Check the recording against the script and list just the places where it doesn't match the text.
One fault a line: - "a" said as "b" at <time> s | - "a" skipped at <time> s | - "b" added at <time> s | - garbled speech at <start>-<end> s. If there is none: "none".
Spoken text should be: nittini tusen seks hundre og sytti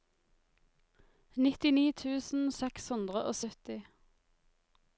none